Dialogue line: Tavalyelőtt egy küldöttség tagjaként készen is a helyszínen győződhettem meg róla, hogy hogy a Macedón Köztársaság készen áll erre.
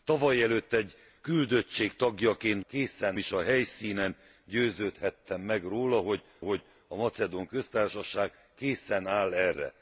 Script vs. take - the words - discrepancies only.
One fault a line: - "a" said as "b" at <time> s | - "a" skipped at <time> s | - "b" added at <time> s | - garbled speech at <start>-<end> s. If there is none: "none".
none